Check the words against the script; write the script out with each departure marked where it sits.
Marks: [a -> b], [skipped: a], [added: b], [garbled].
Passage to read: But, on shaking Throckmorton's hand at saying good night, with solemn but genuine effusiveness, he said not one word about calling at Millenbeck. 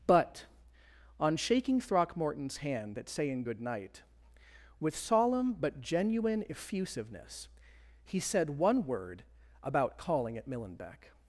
But, on shaking Throckmorton's hand at saying good night, with solemn but genuine effusiveness, he said [skipped: not] one word about calling at Millenbeck.